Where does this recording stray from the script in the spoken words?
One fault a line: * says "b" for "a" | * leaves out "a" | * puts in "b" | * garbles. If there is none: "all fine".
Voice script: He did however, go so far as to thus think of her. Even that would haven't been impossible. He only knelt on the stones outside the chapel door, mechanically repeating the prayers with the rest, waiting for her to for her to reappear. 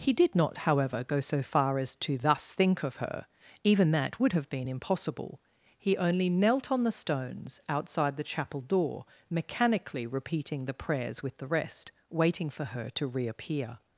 * puts in "not"
* says "have" for "haven't"
* leaves out "for her to"